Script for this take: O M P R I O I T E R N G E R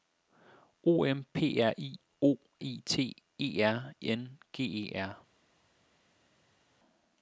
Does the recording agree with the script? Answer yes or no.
yes